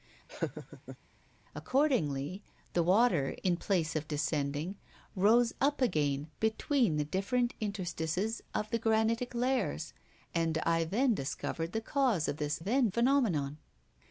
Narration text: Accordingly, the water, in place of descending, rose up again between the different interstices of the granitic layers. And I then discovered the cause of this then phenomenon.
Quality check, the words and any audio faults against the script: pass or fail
fail